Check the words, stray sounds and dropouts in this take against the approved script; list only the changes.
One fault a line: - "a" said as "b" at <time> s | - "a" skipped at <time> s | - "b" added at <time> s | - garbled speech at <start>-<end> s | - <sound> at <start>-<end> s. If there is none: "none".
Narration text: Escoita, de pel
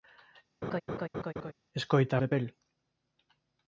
- laugh at 0.6-1.5 s